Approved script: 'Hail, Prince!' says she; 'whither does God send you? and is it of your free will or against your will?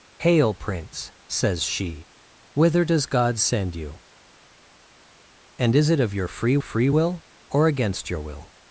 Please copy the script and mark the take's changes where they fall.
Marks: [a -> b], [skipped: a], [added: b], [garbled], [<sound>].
'Hail, Prince!' says she; 'whither does God send you? and is it of your free [added: free] will or against your will?